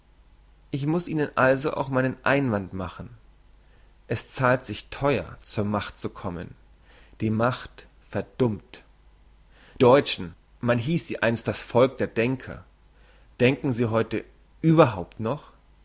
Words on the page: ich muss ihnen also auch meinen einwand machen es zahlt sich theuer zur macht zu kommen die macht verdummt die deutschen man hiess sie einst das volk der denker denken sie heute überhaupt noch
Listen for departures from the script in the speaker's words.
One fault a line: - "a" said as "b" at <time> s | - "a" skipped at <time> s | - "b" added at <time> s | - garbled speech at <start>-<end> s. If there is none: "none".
- "die" skipped at 8.8 s